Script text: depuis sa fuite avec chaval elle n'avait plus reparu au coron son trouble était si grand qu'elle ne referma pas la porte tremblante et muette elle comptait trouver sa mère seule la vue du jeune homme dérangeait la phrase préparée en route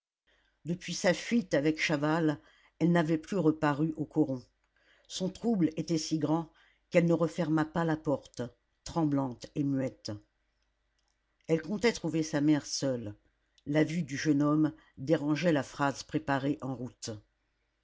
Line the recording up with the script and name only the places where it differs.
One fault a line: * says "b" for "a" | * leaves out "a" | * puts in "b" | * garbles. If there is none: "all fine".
all fine